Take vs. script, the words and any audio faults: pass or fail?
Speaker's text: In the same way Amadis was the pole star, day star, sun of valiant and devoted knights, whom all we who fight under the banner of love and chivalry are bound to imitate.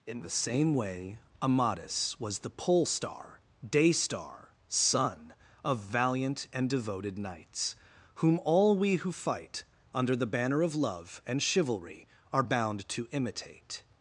pass